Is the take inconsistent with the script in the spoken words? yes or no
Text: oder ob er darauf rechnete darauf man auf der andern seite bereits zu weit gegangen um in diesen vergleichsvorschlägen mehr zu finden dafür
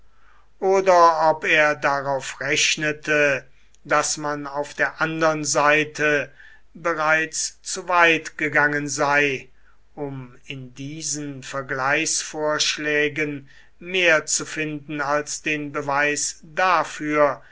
yes